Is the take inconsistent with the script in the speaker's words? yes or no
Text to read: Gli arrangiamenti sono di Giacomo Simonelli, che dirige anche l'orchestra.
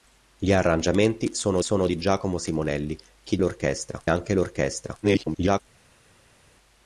yes